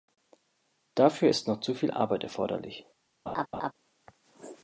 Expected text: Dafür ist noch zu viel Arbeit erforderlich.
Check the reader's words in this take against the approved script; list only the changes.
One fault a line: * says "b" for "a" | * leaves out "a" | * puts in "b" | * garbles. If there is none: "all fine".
all fine